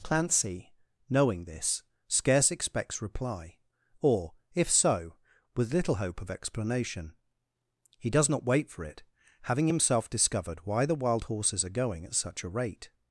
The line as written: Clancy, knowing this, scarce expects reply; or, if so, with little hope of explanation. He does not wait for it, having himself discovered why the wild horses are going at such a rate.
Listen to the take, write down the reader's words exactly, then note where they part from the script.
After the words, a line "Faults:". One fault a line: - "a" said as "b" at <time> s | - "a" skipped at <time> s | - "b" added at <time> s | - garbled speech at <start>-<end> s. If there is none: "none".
Clancy, knowing this, scarce expects reply; or, if so, with little hope of explanation. He does not wait for it, having himself discovered why the wild horses are going at such a rate.
Faults:
none